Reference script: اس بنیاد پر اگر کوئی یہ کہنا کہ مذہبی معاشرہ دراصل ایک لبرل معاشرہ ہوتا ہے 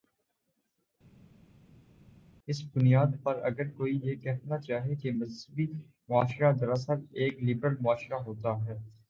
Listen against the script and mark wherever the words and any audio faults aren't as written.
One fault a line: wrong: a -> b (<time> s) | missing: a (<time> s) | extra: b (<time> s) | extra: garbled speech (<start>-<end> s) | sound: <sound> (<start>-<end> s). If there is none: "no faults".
extra: چاہے (4.6 s)